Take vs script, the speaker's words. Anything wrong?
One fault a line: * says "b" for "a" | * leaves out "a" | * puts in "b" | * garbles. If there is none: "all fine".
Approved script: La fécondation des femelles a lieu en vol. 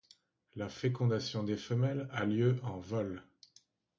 all fine